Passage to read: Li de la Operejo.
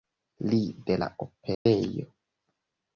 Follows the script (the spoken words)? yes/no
yes